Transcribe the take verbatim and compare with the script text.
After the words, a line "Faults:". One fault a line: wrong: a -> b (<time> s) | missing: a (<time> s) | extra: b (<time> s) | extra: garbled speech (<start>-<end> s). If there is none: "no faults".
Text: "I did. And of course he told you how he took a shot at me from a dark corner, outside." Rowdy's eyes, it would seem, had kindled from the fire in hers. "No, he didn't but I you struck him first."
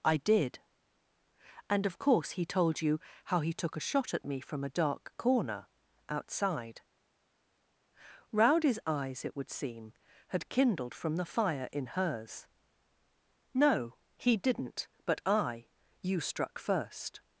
"I did. And of course he told you how he took a shot at me from a dark corner, outside." Rowdy's eyes, it would seem, had kindled from the fire in hers. "No, he didn't but I you struck first."
Faults:
missing: him (16.6 s)